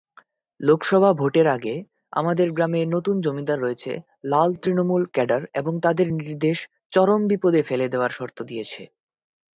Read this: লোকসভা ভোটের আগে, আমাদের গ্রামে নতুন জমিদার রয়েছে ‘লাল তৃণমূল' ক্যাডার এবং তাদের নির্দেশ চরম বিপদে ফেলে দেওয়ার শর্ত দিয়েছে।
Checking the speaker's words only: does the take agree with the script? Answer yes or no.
yes